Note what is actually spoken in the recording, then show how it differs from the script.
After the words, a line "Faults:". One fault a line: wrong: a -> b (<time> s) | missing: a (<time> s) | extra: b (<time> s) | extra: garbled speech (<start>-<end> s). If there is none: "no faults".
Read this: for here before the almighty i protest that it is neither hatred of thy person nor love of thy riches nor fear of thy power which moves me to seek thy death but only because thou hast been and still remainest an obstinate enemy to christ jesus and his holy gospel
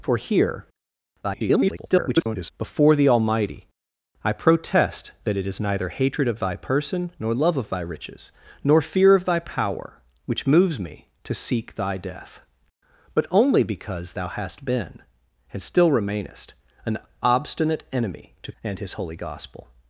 for here [garbled] before the almighty i protest that it is neither hatred of thy person nor love of thy riches nor fear of thy power which moves me to seek thy death but only because thou hast been and still remainest an obstinate enemy to and his holy gospel
Faults:
extra: garbled speech (1.2-2.5 s)
missing: christ jesus (18.5 s)